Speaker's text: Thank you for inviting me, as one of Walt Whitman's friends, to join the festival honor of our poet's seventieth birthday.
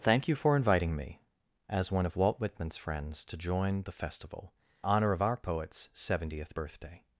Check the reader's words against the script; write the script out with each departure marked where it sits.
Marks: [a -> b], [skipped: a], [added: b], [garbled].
Thank you for inviting me, as one of Walt Whitman's friends, to join the festival honor of our poet's seventieth birthday.